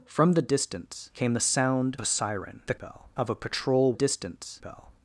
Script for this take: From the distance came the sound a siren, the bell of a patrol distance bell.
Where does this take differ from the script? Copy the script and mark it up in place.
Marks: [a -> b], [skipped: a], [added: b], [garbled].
From the distance came the sound a siren, the bell of a patrol distance bell.